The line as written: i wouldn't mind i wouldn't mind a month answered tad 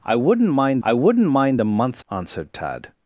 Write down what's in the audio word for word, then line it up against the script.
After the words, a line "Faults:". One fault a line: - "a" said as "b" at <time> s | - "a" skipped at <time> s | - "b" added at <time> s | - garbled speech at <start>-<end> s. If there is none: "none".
i wouldn't mind i wouldn't mind a month answered tad
Faults:
none